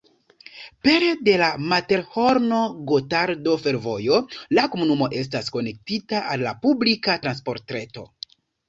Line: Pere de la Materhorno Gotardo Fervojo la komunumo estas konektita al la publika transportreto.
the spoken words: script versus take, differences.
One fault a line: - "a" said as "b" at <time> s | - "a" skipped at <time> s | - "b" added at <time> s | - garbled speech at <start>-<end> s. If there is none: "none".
none